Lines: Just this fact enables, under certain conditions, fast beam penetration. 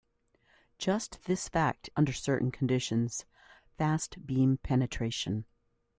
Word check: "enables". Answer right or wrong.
wrong